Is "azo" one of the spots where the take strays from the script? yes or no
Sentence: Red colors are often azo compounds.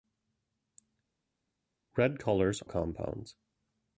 yes